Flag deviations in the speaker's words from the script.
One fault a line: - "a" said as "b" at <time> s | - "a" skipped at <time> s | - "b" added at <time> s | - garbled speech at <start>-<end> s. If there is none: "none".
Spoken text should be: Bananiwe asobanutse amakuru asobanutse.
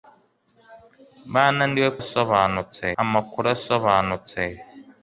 none